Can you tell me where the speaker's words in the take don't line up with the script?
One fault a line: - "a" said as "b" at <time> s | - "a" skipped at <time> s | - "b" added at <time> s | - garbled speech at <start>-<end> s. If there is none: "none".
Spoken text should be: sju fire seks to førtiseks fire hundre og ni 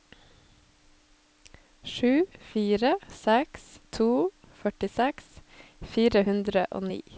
none